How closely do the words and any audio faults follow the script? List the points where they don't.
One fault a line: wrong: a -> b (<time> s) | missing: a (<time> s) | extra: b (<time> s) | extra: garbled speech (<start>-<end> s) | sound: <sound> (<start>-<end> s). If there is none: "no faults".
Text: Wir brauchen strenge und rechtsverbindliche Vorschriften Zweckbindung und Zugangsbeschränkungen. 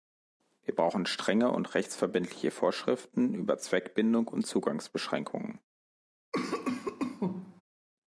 extra: über (3.4 s)
sound: cough (6.3-7.6 s)